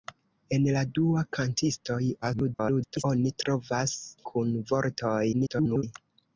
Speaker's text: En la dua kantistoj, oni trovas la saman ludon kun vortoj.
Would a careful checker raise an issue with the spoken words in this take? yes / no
yes